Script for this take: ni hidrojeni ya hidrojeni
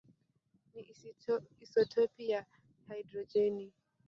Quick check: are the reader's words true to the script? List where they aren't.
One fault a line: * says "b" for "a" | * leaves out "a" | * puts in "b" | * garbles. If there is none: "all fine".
* says "isotopi" for "hidrojeni"